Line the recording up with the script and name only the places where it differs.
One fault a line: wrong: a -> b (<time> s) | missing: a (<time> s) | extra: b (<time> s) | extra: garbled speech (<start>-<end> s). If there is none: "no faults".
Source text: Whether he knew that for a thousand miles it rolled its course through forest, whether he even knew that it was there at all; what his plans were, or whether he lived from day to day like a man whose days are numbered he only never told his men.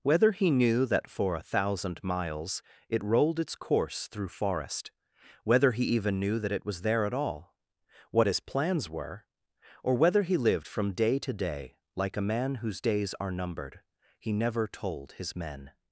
missing: only (14.3 s)